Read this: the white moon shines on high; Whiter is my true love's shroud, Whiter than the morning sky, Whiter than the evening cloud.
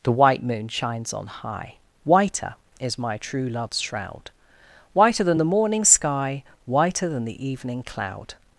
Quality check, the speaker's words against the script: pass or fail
pass